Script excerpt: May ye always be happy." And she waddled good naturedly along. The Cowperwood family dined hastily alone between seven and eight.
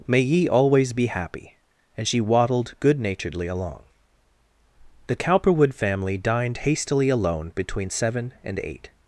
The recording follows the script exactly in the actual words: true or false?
true